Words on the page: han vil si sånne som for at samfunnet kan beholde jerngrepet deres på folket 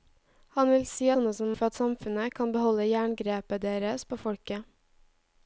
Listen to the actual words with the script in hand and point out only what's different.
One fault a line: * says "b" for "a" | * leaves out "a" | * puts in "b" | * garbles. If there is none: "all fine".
all fine